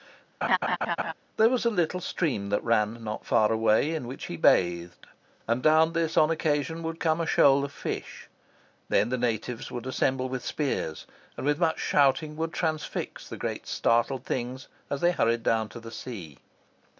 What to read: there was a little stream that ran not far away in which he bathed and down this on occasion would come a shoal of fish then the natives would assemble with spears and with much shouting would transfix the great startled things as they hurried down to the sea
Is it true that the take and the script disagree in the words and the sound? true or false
true